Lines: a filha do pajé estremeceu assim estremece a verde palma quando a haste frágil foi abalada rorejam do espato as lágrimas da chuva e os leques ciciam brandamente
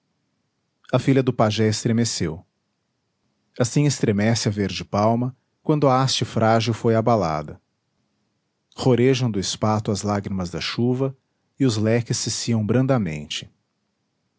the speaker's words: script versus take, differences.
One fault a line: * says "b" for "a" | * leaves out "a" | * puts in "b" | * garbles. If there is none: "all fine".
all fine